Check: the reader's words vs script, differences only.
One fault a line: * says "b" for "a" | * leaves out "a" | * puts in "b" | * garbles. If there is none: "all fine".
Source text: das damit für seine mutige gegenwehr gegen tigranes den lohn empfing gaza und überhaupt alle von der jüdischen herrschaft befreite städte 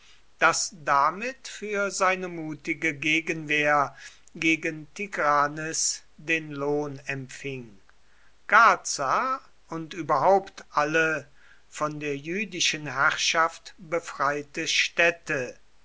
all fine